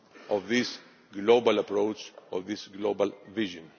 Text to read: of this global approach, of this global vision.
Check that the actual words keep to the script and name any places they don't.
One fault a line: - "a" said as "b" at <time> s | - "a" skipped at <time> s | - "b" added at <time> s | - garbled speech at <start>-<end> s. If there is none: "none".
none